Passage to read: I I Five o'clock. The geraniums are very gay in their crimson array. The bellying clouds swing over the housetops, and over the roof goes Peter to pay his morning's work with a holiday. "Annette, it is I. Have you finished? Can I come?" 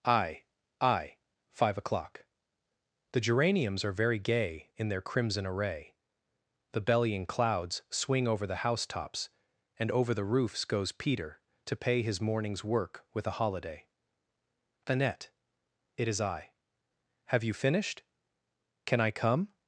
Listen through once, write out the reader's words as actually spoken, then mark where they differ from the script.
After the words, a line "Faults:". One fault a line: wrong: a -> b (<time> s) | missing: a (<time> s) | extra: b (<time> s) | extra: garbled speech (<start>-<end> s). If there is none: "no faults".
I I Five o'clock. The geraniums are very gay in their crimson array. The bellying clouds swing over the housetops, and over the roofs goes Peter to pay his morning's work with a holiday. "Annette, it is I. Have you finished? Can I come?"
Faults:
wrong: roof -> roofs (10.2 s)